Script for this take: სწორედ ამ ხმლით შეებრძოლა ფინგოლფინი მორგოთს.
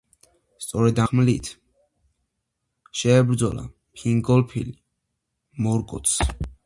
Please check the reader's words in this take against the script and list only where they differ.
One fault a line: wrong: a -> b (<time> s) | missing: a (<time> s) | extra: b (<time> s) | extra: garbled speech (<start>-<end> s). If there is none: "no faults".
missing: ამ (1.0 s)